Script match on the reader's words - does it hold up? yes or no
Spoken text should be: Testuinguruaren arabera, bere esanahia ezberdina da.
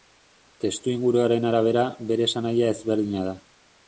yes